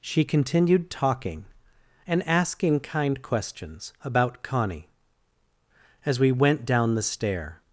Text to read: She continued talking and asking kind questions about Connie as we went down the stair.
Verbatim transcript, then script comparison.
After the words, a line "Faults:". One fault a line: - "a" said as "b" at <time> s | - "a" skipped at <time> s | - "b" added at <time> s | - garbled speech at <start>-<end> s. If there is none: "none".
She continued talking and asking kind questions about Connie as we went down the stair.
Faults:
none